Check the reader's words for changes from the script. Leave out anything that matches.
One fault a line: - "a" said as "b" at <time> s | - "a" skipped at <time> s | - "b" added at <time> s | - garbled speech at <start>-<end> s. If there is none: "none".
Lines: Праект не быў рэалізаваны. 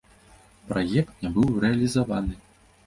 none